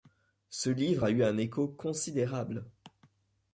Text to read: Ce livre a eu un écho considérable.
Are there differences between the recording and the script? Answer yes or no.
no